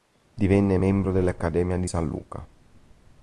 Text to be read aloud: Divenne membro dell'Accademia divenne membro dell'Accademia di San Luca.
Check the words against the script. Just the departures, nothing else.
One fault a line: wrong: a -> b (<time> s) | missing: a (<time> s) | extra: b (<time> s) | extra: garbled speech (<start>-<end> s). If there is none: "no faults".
missing: divenne membro dell'Accademia (1.8 s)